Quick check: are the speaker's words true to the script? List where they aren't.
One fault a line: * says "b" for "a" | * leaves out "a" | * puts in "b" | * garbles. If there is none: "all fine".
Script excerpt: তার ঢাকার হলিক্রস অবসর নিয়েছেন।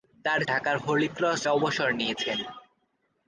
all fine